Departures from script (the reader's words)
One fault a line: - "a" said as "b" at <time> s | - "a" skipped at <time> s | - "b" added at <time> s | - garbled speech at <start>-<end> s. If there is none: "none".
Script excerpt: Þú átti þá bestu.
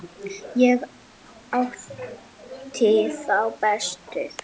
- "Þú" said as "Ég" at 0.6 s